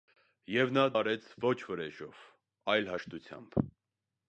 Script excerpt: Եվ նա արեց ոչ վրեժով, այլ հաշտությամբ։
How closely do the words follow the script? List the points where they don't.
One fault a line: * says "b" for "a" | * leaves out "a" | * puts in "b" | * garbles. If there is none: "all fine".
all fine